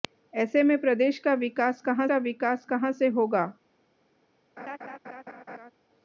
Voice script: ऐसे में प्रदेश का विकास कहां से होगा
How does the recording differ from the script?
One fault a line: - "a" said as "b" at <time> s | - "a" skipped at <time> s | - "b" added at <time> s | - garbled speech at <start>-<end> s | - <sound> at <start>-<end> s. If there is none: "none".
- "का विकास कहां" added at 2.0 s
- laugh at 4.6-5.7 s